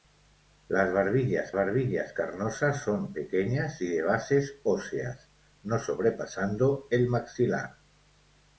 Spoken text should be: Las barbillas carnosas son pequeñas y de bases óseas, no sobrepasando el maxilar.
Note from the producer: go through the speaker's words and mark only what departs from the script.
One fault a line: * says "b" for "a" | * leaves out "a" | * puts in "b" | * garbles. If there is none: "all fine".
* puts in "barbillas"